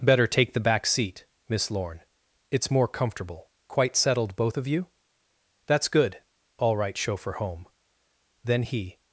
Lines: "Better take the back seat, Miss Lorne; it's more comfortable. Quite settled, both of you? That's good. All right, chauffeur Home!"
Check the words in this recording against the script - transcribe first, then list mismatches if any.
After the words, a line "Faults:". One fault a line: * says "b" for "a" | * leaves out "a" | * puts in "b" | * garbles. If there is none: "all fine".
"Better take the back seat, Miss Lorne; it's more comfortable. Quite settled, both of you? That's good. All right, chauffeur Home!" Then he
Faults:
* puts in "Then he"